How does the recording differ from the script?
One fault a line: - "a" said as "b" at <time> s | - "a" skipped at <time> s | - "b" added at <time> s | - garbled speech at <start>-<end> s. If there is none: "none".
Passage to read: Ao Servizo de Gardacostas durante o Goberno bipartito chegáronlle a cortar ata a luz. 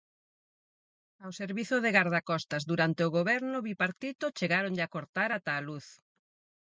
none